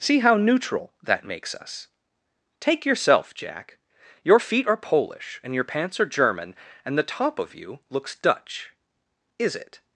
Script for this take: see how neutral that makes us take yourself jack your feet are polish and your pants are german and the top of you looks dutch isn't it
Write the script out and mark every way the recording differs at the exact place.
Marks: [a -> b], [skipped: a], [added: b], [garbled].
see how neutral that makes us take yourself jack your feet are polish and your pants are german and the top of you looks dutch [isn't -> is] it